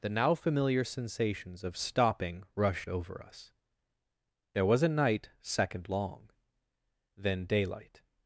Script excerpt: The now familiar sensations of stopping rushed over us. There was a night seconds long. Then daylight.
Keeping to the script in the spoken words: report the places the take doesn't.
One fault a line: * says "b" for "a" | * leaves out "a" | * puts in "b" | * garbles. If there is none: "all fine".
* says "second" for "seconds"